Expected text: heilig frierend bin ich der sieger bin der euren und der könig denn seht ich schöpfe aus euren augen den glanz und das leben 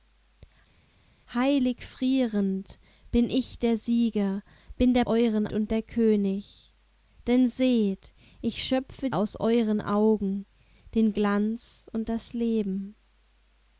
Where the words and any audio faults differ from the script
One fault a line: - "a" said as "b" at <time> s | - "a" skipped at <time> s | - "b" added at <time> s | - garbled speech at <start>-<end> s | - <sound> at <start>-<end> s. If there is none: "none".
none